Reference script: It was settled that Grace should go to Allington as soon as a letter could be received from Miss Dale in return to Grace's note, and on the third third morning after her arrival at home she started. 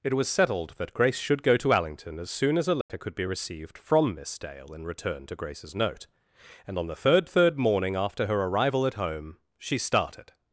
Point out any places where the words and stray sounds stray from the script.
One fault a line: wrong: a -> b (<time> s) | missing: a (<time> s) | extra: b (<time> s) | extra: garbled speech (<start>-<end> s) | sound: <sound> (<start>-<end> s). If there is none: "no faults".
sound: dropout (2.8-2.9 s)